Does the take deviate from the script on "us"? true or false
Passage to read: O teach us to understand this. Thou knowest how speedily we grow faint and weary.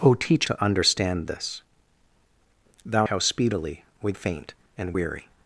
true